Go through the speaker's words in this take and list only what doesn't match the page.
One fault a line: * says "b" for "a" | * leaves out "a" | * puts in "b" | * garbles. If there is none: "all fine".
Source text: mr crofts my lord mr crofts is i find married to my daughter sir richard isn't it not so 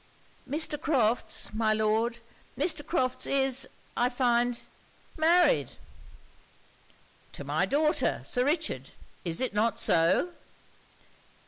* says "is" for "isn't"